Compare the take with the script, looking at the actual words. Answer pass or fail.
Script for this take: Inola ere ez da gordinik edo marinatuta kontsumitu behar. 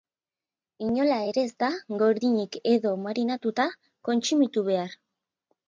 pass